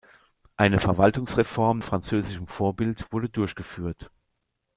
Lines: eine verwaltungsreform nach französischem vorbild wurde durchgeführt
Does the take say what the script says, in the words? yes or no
no